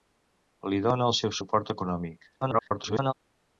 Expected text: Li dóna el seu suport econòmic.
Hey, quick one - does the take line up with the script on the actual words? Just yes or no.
no